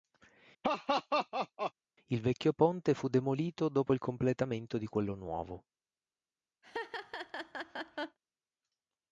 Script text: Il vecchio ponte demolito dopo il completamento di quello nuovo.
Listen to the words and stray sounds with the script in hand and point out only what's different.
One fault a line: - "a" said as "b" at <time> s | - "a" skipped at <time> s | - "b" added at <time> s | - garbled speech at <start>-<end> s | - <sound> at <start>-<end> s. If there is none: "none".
- laugh at 0.6-1.7 s
- "fu" added at 2.9 s
- laugh at 6.6-8.2 s